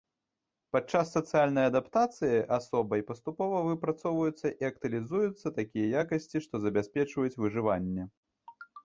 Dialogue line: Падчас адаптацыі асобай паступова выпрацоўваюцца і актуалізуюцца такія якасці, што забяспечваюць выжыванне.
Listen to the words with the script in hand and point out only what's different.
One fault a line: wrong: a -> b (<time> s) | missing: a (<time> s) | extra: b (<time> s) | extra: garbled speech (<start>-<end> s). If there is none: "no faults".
extra: сацыяльнай (1.1 s)